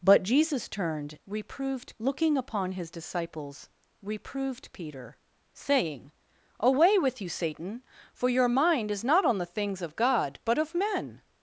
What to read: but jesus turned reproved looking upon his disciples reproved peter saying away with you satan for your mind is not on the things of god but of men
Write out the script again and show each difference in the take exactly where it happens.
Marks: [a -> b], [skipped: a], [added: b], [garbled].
but jesus turned reproved looking upon his disciples reproved peter saying away with you satan for your mind is not on the things of god but of men